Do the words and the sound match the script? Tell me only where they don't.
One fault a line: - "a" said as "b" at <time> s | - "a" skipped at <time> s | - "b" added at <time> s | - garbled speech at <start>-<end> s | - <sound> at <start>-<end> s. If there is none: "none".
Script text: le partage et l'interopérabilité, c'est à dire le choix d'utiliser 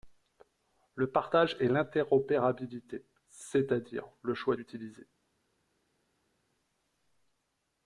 none